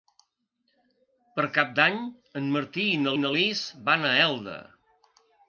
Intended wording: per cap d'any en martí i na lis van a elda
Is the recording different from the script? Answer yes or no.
yes